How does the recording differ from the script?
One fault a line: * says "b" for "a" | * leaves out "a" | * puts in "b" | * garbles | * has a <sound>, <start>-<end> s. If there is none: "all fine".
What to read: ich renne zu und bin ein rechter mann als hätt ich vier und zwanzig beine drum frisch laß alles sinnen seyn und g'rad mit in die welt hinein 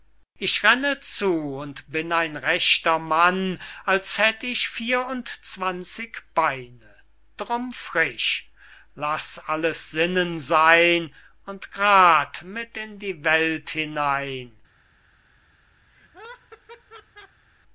* has a laugh, 15.9-17.4 s